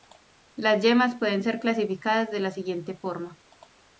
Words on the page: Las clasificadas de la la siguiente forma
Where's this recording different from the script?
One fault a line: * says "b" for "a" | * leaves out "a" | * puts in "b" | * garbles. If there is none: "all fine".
* puts in "yemas pueden ser"
* leaves out "la"